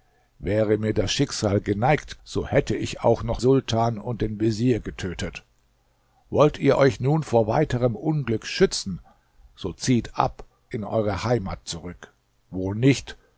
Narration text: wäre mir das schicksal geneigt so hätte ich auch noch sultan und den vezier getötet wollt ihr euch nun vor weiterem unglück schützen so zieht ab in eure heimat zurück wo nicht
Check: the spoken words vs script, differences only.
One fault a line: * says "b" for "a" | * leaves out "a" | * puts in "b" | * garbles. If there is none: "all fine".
all fine